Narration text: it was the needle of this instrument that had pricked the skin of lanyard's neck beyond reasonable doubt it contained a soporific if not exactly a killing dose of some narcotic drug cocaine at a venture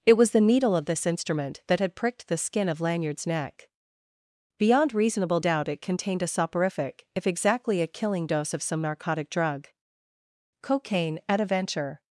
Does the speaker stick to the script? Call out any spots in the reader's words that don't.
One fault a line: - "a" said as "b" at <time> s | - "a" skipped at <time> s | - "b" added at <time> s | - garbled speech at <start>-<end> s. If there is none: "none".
- "not" skipped at 7.3 s